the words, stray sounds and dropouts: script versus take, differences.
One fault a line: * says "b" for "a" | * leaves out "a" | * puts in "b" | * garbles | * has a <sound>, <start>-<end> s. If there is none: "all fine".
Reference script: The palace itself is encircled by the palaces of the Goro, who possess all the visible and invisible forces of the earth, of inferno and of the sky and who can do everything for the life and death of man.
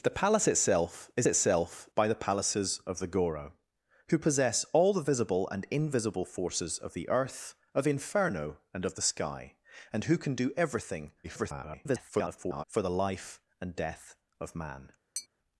* says "itself" for "encircled"
* garbles
* has a tap, 15.1-15.3 s